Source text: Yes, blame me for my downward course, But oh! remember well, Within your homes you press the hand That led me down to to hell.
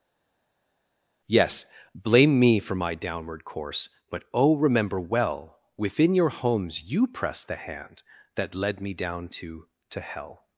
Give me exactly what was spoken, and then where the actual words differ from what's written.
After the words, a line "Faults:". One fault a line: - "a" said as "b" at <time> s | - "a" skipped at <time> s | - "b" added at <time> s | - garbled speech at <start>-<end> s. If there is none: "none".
Yes, blame me for my downward course, But oh! remember well, Within your homes you press the hand That led me down to to hell.
Faults:
none